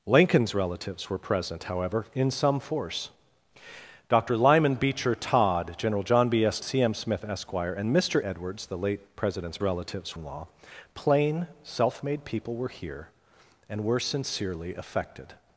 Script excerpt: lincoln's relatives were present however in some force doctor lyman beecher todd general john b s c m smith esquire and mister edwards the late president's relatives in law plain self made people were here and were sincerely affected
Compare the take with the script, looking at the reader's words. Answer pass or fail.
pass